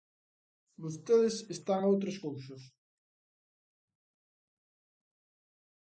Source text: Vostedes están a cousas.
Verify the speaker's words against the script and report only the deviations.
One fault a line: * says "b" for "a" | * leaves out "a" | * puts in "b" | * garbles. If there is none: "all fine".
* puts in "outras"